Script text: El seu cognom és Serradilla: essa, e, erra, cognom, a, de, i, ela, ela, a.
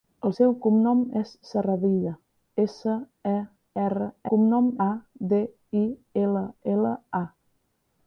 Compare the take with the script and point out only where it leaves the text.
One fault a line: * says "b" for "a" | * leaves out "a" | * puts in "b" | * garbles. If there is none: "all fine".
all fine